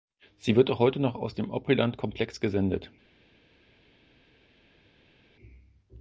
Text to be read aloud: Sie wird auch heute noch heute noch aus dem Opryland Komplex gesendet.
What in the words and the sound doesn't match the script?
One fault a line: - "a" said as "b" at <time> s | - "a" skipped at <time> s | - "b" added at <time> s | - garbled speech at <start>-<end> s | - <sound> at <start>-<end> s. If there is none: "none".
- "heute noch" skipped at 1.1 s